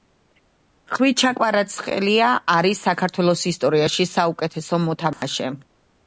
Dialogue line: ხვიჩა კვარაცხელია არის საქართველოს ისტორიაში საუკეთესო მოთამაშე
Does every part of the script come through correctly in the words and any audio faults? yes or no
no